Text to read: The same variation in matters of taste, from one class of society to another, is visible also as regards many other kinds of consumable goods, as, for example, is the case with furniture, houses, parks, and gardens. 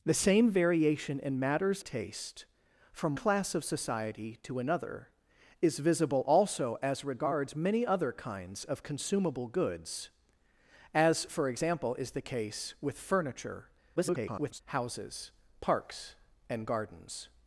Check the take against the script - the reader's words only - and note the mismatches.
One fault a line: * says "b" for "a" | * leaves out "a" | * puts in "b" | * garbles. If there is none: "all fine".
* leaves out "of"
* leaves out "one"
* garbles